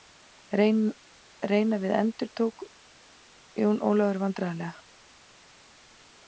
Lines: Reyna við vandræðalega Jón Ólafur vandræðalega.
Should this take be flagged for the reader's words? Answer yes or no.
yes